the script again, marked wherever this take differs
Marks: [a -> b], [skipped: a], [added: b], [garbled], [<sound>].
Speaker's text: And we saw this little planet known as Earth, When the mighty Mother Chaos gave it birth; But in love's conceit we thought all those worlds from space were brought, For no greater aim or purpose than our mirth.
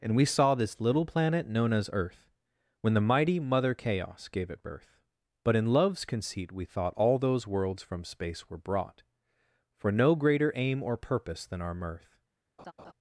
And we saw this little planet known as Earth, When the mighty Mother Chaos gave it birth; But in love's conceit we thought all those worlds from space were brought, For no greater aim or purpose than our mirth. [laugh]